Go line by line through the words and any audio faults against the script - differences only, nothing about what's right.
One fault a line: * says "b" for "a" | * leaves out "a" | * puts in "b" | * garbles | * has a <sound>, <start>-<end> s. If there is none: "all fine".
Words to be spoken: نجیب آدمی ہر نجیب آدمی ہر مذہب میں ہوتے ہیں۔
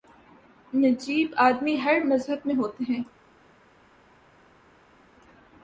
* leaves out "نجیب آدمی ہر"